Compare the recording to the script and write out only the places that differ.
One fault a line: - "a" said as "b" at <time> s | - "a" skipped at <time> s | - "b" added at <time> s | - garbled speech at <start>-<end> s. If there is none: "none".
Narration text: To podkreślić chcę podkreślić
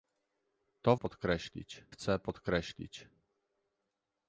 none